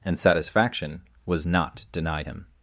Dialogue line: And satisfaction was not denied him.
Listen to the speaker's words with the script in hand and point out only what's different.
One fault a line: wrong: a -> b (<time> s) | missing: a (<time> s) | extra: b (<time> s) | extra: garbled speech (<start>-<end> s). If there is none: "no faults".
no faults